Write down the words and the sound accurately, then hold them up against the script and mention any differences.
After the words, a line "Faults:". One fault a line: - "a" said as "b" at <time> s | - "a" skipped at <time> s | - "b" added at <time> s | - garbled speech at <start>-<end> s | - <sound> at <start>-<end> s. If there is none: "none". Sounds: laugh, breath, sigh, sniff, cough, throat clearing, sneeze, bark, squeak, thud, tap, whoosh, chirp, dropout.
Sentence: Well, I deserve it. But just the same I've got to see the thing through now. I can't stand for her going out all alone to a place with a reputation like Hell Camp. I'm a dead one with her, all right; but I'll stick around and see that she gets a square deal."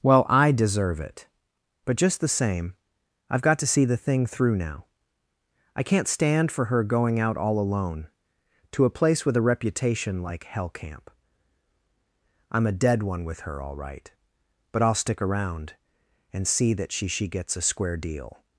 Well, I deserve it. But just the same I've got to see the thing through now. I can't stand for her going out all alone to a place with a reputation like Hell Camp. I'm a dead one with her, all right; but I'll stick around and see that she she gets a square deal."
Faults:
- "she" added at 17.1 s